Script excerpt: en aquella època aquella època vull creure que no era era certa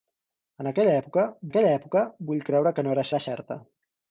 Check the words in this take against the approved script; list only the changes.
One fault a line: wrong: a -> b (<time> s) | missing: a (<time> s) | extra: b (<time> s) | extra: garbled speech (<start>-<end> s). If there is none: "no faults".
no faults